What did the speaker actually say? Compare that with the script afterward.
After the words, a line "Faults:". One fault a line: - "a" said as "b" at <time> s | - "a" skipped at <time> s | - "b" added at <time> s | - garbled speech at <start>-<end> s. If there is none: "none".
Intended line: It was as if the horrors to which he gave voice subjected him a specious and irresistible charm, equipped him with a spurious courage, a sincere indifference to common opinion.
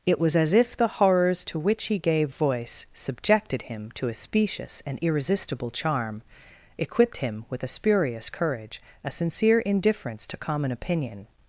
It was as if the horrors to which he gave voice subjected him to a specious and irresistible charm, equipped him with a spurious courage, a sincere indifference to common opinion.
Faults:
- "to" added at 4.0 s